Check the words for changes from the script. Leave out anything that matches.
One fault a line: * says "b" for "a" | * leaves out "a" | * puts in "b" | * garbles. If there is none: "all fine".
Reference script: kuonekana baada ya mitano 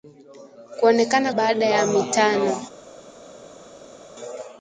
all fine